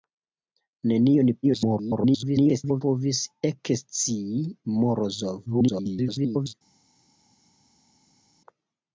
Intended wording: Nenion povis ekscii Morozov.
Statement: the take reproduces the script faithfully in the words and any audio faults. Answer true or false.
false